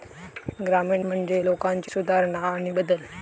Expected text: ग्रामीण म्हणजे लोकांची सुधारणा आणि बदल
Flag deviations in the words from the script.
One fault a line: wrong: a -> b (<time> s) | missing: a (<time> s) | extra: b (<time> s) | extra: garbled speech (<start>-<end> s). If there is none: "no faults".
no faults